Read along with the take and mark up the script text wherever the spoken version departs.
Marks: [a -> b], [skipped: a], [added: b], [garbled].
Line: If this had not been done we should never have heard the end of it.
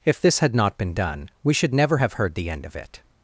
If this had not been done we should never have heard the end of it.